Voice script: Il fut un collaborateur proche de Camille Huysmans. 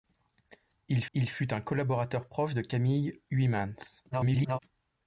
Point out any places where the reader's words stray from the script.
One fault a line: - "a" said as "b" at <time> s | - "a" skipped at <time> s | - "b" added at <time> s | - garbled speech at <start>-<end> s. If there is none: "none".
- "il" added at 1.1 s
- garbled speech at 4.1-4.6 s